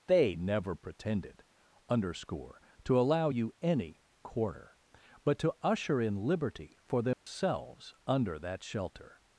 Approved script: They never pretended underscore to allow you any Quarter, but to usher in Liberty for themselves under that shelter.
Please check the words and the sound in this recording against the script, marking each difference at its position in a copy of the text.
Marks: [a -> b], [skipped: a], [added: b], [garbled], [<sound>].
They never pretended underscore to allow you any Quarter, but to usher in Liberty for themselves [dropout] under that shelter.